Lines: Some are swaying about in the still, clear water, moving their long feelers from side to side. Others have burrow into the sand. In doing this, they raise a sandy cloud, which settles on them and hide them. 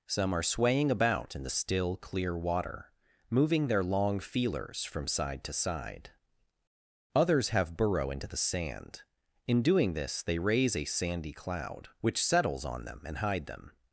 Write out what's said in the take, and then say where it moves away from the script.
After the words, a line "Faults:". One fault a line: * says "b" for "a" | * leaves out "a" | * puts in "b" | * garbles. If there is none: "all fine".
Some are swaying about in the still, clear water, moving their long feelers from side to side. Others have burrow into the sand. In doing this, they raise a sandy cloud, which settles on them and hide them.
Faults:
all fine